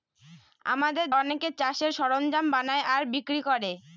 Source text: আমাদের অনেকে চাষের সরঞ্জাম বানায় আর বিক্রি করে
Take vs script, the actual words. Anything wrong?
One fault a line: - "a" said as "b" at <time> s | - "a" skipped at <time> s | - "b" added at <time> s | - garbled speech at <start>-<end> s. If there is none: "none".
none